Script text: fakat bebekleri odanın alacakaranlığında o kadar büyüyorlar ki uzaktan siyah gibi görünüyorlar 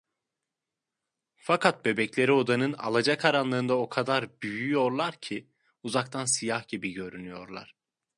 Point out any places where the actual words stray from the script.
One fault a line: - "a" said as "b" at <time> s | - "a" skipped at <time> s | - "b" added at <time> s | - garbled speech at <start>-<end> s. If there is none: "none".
none